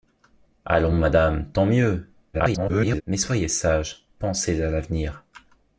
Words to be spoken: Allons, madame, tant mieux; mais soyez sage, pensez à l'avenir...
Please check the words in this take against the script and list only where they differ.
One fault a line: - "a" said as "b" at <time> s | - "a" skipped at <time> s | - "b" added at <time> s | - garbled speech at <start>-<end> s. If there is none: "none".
- garbled speech at 2.3-3.0 s